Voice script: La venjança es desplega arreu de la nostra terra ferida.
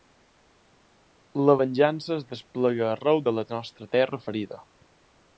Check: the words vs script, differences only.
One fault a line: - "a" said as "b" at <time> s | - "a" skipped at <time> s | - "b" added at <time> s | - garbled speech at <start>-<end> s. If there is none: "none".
none